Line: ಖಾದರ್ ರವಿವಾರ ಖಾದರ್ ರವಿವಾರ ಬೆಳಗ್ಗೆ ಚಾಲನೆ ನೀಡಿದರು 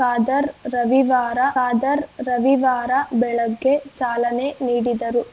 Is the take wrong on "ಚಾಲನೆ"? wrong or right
right